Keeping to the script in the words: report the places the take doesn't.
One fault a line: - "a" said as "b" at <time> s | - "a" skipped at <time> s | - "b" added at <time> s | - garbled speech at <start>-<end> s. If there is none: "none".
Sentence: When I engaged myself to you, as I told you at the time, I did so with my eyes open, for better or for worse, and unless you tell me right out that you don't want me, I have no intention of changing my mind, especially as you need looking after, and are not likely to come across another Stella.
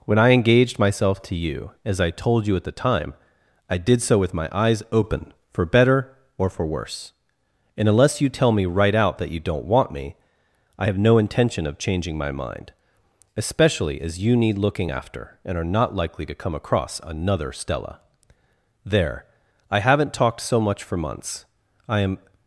- "There I haven't talked so much for months I am" added at 18.9 s